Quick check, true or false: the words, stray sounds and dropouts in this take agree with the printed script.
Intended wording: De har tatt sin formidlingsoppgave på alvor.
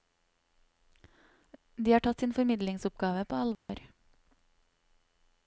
false